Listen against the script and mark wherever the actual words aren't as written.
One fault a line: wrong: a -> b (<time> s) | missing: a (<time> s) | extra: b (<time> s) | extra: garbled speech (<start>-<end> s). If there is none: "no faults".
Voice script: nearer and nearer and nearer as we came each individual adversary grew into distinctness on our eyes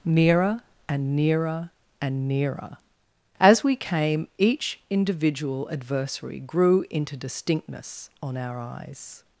no faults